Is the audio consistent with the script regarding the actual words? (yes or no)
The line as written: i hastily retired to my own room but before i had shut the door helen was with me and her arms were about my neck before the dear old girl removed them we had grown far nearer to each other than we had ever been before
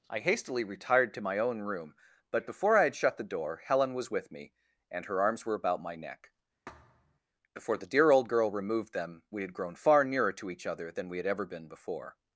yes